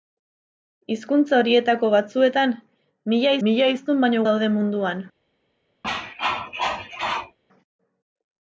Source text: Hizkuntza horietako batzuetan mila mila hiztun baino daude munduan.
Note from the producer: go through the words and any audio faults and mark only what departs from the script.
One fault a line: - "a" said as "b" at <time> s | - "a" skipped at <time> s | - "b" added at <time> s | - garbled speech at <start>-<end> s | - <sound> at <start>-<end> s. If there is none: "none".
- cough at 5.8-7.4 s